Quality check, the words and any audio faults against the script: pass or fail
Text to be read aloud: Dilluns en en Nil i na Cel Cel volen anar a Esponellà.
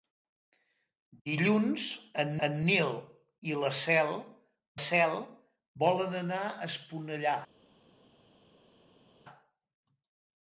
pass